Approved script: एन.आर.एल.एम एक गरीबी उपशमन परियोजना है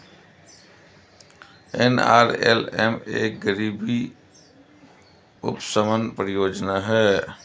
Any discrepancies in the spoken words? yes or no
no